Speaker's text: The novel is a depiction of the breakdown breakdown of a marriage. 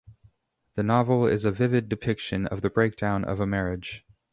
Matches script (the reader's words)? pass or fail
fail